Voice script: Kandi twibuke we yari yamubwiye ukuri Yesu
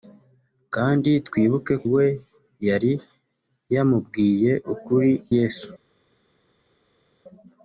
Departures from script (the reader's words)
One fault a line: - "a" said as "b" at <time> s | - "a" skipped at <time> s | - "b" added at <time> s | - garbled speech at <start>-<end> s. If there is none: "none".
none